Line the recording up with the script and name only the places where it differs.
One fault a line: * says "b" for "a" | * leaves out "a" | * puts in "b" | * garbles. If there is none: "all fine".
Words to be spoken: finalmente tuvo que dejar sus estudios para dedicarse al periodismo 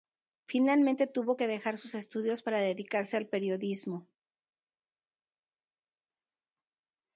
all fine